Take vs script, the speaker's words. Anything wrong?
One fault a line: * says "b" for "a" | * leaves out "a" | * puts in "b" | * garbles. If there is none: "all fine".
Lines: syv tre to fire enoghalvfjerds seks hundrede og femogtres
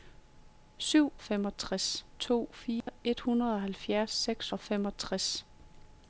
* says "femogtres" for "tre"
* leaves out "hundrede"